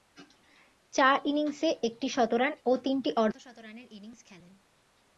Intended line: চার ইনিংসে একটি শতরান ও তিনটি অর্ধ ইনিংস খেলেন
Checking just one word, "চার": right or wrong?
right